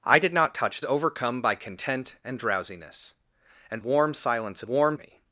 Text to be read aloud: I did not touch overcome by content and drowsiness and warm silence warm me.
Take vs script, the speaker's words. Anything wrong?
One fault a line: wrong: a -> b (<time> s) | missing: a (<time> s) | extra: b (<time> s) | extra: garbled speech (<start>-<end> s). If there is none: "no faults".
no faults